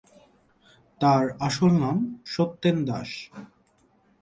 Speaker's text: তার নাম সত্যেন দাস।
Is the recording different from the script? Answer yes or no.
yes